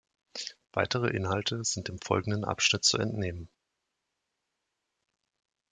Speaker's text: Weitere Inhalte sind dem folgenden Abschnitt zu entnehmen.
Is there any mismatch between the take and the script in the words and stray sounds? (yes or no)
no